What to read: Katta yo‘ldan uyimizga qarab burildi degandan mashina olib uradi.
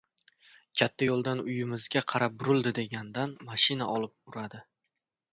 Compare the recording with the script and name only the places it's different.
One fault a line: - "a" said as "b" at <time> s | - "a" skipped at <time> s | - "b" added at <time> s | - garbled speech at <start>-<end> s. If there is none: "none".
none